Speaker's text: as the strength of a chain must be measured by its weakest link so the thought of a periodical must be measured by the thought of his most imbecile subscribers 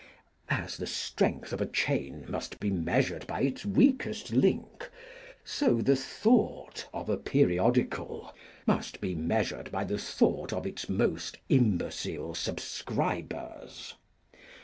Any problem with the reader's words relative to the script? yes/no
yes